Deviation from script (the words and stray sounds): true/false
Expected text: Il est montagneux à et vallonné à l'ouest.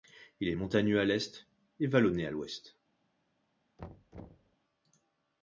true